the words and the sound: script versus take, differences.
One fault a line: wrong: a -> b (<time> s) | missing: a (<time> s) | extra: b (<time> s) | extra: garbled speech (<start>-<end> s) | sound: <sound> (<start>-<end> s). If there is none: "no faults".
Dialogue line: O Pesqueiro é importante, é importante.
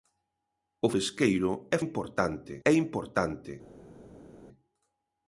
no faults